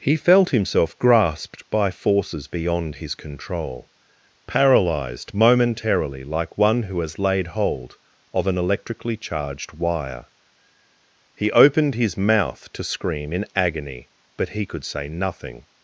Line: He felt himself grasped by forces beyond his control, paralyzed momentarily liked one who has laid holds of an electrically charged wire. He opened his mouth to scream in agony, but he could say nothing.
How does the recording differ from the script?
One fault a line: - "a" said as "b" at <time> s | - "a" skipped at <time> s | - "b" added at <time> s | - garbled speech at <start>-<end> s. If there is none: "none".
- "liked" said as "like" at 6.2 s
- "holds" said as "hold" at 7.5 s